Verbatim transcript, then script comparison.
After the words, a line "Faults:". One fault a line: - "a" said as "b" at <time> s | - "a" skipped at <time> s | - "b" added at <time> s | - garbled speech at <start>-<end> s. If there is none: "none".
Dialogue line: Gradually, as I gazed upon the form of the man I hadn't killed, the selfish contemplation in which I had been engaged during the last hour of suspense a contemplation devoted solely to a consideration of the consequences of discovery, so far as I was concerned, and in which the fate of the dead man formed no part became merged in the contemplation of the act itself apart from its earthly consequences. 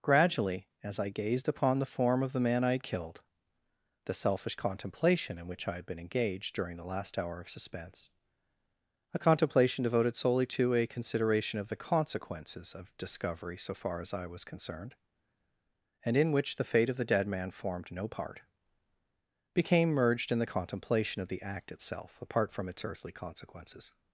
Gradually, as I gazed upon the form of the man I had killed, the selfish contemplation in which I had been engaged during the last hour of suspense a contemplation devoted solely to a consideration of the consequences of discovery, so far as I was concerned, and in which the fate of the dead man formed no part became merged in the contemplation of the act itself apart from its earthly consequences.
Faults:
- "hadn't" said as "had" at 2.7 s